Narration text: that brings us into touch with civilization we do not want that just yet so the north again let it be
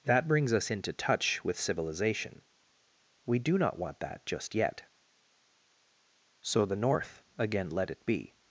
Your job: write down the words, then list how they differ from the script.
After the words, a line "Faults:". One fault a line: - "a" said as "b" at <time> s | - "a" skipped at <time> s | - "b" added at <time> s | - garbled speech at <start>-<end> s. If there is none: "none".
that brings us into touch with civilization we do not want that just yet so the north again let it be
Faults:
none